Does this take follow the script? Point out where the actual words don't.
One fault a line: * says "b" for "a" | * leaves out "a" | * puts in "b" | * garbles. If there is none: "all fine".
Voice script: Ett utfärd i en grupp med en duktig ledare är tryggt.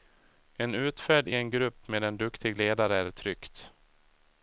* says "En" for "Ett"